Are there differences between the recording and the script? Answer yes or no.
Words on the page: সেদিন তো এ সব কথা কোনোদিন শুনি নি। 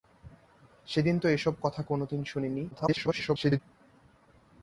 yes